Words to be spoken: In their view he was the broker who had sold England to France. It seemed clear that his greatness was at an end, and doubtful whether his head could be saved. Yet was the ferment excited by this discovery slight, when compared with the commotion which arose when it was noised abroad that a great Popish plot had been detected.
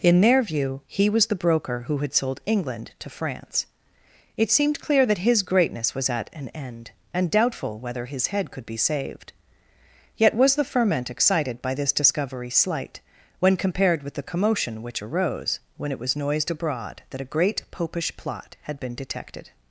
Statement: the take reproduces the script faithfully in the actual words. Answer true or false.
true